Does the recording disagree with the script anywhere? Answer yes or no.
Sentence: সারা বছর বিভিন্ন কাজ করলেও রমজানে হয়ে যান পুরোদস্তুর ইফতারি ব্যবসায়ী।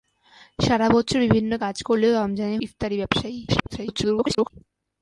yes